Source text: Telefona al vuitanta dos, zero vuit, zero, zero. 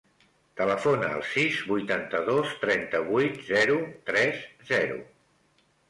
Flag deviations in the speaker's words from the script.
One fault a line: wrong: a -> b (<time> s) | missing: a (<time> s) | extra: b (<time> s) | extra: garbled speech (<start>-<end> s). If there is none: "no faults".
extra: sis (1.3 s)
wrong: zero -> trenta (2.7 s)
extra: tres (4.1 s)